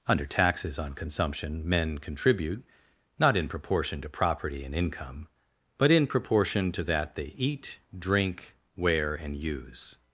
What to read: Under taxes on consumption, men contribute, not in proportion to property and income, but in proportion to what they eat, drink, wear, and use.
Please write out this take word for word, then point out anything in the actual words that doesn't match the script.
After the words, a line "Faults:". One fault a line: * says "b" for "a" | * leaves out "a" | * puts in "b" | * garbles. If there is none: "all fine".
Under taxes on consumption, men contribute, not in proportion to property and income, but in proportion to that they eat, drink, wear, and use.
Faults:
* says "that" for "what"